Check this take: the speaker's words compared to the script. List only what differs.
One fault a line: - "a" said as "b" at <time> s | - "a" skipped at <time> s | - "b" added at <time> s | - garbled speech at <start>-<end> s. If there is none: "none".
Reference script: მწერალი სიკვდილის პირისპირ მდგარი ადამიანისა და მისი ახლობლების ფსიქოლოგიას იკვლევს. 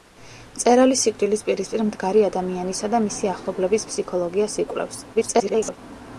- garbled speech at 5.1-5.8 s